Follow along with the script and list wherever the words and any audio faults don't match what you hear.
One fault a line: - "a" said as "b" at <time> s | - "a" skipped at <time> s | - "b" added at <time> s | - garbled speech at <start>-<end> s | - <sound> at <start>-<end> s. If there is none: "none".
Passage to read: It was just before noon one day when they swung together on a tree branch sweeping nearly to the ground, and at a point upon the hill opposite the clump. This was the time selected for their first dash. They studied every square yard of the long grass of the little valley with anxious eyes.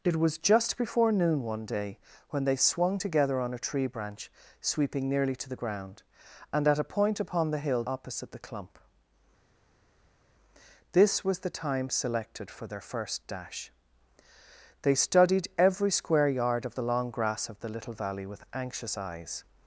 none